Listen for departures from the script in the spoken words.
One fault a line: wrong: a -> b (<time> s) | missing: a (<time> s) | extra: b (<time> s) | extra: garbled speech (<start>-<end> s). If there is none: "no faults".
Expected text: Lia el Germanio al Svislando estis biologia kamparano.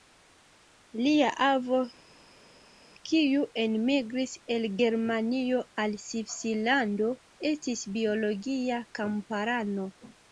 extra: avo kiu enmigris (1.5 s)